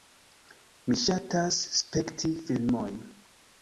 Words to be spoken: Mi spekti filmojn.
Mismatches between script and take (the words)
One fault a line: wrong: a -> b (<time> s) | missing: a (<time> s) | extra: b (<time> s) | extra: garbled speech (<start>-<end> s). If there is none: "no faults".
extra: ŝatas (1.0 s)